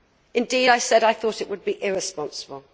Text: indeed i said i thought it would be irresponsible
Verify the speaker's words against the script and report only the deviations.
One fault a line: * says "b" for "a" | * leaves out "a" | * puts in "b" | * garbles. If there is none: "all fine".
all fine